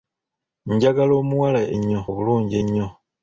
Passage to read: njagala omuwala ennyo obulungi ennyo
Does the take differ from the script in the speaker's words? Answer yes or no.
no